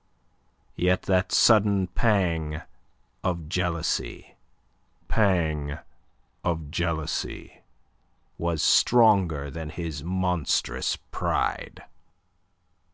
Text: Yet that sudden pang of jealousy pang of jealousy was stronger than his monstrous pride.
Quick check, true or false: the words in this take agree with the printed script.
true